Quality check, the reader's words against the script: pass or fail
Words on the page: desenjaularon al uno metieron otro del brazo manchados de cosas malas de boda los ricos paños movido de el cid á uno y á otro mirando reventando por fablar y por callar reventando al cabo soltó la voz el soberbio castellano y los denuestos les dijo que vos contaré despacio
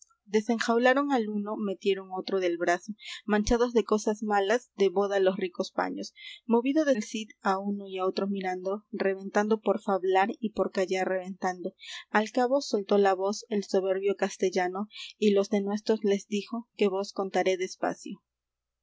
pass